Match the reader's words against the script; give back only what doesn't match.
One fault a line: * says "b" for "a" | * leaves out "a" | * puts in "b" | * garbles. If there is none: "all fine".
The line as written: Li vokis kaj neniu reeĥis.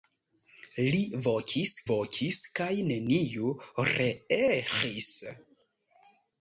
* puts in "vokis"